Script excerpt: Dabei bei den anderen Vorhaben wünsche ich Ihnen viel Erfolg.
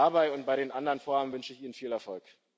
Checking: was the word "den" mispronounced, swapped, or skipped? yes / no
no